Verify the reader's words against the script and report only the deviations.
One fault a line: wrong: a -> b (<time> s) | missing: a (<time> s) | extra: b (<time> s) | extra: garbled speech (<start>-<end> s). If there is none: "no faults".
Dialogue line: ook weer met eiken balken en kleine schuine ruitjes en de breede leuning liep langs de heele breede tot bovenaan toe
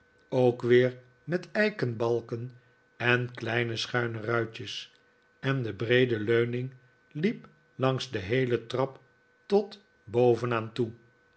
wrong: breede -> trap (8.7 s)